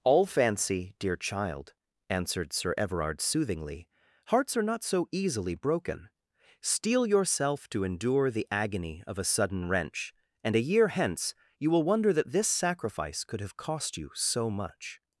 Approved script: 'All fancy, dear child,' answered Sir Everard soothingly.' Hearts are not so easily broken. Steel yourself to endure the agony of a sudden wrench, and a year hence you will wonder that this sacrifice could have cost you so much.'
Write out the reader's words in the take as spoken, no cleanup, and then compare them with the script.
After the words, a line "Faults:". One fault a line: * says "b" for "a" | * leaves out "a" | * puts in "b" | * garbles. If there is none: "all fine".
'All fancy, dear child,' answered Sir Everard soothingly.' Hearts are not so easily broken. Steel yourself to endure the agony of a sudden wrench, and a year hence you will wonder that this sacrifice could have cost you so much.'
Faults:
all fine